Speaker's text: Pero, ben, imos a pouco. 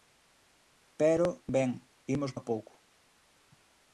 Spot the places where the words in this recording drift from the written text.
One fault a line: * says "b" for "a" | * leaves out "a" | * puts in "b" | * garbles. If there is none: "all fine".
all fine